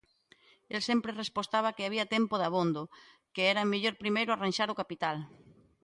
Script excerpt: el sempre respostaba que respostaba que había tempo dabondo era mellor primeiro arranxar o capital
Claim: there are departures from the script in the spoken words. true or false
true